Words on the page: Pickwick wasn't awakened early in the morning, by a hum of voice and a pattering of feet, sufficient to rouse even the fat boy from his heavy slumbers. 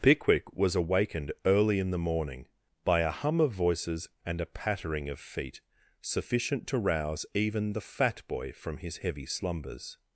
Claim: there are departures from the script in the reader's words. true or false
true